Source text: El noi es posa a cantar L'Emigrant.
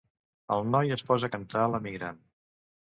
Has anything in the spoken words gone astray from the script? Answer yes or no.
no